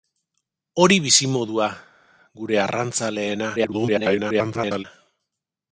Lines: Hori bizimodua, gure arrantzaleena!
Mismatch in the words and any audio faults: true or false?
true